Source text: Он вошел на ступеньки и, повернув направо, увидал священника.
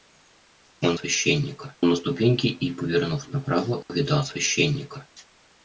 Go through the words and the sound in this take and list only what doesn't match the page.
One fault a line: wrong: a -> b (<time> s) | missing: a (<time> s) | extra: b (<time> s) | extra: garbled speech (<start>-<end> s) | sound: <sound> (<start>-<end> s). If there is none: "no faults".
wrong: вошел -> священника (0.9 s)
sound: dropout (3.8-3.9 s)